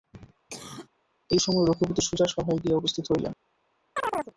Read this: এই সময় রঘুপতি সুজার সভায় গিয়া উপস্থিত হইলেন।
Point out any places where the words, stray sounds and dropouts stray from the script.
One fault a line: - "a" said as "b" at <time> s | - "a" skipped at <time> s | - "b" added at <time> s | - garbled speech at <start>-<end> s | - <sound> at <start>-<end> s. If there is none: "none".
- cough at 0.5-0.9 s
- chirp at 4.0-4.3 s